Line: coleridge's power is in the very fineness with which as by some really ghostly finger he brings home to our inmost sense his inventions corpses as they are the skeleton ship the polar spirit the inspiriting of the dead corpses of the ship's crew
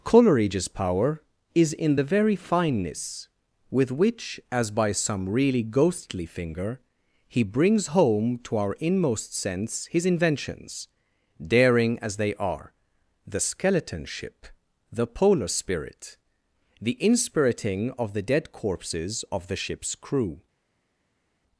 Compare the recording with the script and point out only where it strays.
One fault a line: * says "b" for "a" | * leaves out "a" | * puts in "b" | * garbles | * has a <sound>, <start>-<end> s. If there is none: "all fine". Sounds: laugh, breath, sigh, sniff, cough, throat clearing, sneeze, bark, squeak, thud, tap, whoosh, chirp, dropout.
* says "daring" for "corpses"